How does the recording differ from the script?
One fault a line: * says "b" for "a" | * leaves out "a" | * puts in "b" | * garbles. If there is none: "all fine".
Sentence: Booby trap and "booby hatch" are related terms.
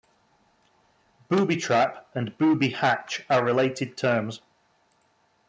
all fine